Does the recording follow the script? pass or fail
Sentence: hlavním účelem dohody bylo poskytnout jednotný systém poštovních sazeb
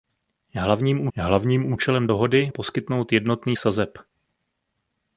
fail